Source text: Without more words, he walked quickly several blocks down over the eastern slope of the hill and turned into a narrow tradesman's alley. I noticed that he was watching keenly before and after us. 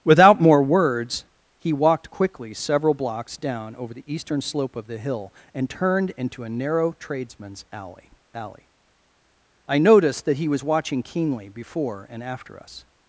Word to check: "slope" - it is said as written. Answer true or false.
true